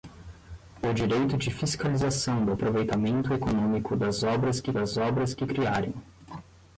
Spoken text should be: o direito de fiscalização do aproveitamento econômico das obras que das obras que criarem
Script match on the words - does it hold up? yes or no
yes